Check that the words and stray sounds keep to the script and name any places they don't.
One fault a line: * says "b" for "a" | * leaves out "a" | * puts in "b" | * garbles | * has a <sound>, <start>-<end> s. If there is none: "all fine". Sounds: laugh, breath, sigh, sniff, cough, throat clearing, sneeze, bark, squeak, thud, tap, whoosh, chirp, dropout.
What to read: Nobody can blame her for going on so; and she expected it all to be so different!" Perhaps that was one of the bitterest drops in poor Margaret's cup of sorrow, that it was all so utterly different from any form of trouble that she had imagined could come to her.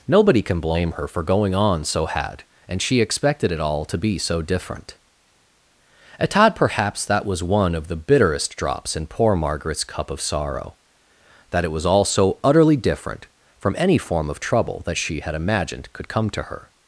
* puts in "had"
* puts in "at todd"